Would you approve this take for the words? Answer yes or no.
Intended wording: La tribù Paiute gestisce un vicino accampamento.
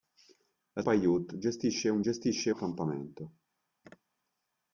no